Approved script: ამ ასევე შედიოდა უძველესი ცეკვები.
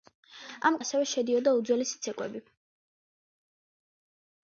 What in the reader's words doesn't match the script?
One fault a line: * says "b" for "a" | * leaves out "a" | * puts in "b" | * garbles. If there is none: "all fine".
all fine